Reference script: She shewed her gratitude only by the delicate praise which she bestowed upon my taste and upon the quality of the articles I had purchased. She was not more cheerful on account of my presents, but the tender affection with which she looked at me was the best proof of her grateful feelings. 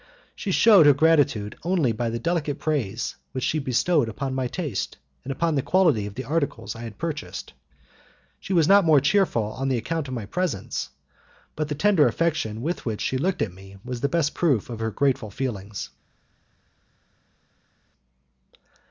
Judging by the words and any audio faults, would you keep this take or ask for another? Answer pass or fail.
pass